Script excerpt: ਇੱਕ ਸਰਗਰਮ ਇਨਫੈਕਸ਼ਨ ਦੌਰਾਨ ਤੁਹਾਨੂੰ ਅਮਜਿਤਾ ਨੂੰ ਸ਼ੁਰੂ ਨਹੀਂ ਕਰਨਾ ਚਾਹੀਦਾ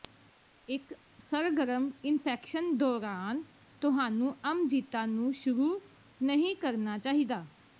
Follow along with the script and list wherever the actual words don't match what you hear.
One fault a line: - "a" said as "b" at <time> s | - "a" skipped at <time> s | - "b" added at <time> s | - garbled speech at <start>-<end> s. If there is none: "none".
none